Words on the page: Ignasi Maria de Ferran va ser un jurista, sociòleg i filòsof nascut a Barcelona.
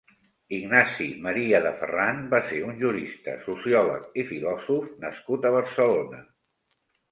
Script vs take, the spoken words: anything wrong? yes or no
no